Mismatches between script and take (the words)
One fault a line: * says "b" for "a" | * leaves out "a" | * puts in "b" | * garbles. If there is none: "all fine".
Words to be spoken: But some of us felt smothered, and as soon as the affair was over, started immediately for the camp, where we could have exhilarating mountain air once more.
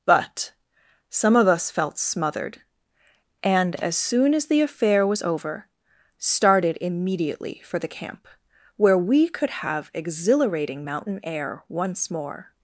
all fine